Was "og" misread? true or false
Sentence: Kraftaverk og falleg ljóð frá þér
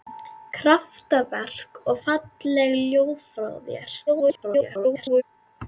false